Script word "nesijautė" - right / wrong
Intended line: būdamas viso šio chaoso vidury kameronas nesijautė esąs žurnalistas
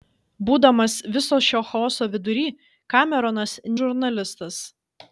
wrong